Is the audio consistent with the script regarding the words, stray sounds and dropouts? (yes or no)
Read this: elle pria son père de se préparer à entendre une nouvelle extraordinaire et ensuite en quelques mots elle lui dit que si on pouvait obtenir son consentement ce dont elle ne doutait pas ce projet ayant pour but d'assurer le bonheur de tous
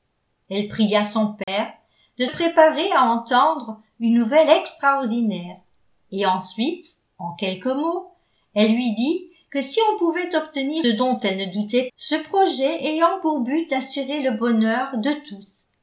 no